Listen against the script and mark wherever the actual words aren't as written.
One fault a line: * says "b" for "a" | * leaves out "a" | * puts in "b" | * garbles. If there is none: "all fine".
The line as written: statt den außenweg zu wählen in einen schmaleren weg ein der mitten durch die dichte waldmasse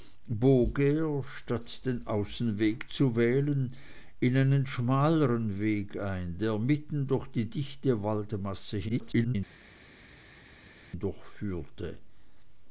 * garbles